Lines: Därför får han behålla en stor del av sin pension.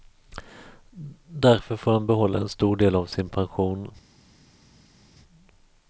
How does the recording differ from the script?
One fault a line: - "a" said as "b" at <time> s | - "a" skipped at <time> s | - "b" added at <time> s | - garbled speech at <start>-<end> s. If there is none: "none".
none